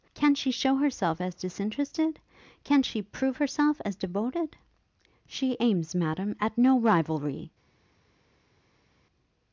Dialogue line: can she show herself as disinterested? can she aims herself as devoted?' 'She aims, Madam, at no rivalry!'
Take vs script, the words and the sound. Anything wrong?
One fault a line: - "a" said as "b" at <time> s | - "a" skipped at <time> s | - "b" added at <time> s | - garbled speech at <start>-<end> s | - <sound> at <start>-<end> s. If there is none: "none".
- "aims" said as "prove" at 3.0 s